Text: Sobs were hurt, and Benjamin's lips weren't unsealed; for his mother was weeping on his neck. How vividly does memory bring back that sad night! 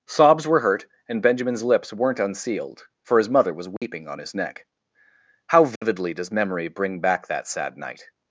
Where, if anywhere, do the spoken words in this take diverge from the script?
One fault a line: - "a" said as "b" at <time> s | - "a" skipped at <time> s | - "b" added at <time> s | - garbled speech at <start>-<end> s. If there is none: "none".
none